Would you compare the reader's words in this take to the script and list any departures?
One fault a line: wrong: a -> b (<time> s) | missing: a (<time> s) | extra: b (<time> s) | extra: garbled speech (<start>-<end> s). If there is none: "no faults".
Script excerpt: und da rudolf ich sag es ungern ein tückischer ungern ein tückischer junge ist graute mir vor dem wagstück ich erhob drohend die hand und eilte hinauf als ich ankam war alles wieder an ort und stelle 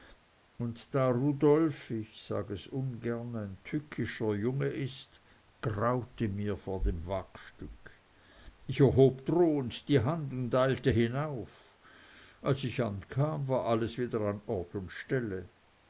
missing: ungern ein tückischer (4.3 s)